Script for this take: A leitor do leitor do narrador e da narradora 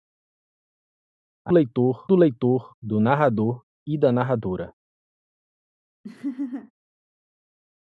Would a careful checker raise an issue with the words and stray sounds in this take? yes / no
yes